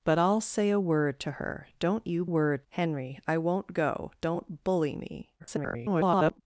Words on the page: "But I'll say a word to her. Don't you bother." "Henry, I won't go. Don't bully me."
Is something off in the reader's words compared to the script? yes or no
yes